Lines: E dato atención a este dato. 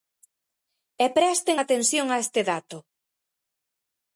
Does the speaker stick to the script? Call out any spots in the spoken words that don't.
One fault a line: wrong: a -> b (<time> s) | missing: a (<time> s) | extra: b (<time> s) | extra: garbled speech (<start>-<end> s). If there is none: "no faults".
wrong: dato -> presten (1.2 s)